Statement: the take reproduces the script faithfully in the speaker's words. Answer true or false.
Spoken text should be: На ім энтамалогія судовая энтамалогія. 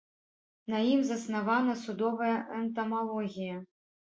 false